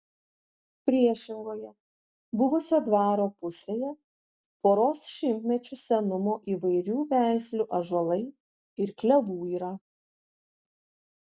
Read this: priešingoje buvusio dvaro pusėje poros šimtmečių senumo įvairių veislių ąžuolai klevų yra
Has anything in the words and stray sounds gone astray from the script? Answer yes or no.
yes